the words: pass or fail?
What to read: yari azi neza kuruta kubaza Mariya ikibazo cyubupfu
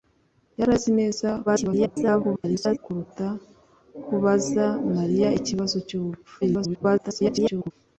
fail